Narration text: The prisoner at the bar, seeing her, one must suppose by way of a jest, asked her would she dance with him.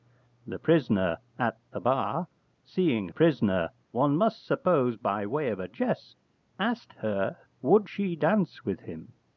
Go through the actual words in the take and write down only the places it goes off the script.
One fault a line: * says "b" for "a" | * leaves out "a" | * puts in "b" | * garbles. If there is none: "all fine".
* says "prisoner" for "her"